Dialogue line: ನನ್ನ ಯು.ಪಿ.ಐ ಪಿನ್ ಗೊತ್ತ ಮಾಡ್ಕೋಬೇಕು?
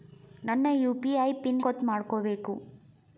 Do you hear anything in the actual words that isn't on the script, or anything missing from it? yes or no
no